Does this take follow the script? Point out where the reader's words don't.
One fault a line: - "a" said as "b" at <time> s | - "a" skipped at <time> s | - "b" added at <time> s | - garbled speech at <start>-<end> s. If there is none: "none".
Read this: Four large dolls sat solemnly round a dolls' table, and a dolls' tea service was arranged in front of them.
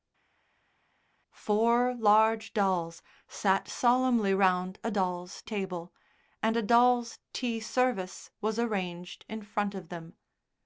none